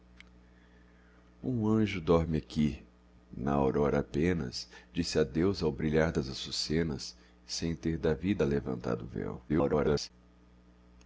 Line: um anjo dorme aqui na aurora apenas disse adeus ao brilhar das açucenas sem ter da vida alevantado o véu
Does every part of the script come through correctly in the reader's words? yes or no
no